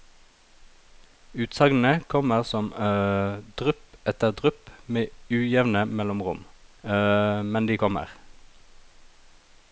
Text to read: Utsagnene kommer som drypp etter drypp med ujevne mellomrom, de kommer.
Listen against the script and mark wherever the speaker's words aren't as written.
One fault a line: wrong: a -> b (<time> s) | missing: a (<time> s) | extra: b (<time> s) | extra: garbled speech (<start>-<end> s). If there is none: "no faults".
extra: men (7.5 s)